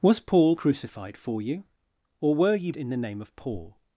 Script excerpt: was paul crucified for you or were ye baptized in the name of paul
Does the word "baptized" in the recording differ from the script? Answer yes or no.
yes